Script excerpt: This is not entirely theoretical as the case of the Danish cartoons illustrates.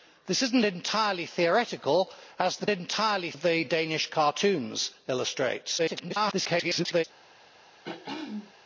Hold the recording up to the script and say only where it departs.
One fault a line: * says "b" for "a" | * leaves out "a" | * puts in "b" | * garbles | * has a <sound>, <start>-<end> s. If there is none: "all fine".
* says "entirely" for "case"
* garbles
* has a throat clearing, 7.8-8.5 s